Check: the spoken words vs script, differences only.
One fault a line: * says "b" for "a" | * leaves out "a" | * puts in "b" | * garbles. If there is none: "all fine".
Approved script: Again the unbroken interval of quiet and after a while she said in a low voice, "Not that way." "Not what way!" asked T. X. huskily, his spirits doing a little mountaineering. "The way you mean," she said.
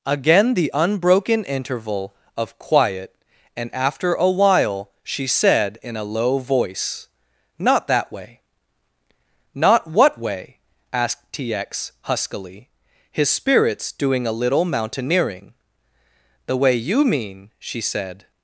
all fine